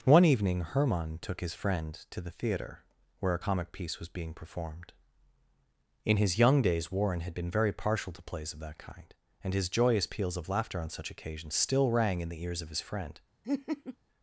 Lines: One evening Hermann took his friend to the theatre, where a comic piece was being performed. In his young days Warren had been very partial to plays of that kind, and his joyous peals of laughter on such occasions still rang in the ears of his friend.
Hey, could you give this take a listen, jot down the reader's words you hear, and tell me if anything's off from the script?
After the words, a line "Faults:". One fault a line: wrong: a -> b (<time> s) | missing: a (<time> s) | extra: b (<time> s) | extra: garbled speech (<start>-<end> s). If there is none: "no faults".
One evening Hermann took his friend to the theatre, where a comic piece was being performed. In his young days Warren had been very partial to plays of that kind, and his joyous peals of laughter on such occasions still rang in the ears of his friend.
Faults:
no faults